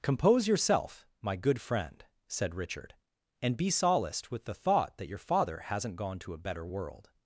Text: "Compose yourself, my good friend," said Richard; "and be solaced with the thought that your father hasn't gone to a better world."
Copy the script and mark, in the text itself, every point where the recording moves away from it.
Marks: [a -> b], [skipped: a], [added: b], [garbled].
"Compose yourself, my good friend," said Richard; "and be solaced with the thought that your father hasn't gone to a better world."